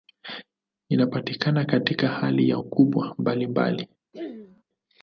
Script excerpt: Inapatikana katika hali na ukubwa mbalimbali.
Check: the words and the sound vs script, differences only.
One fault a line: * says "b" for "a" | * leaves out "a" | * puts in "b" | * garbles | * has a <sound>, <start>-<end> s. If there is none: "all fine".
* has a throat clearing, 4.1-4.6 s